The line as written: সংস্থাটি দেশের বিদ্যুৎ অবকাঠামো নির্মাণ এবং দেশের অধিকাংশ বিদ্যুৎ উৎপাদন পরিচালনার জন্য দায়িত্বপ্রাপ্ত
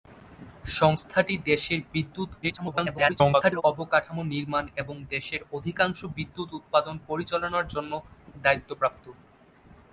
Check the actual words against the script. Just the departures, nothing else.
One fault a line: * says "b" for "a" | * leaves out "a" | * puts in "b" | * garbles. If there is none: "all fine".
* garbles